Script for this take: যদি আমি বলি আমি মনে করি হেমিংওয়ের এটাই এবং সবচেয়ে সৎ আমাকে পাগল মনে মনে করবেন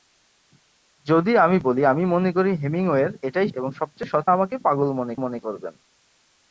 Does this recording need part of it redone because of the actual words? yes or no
no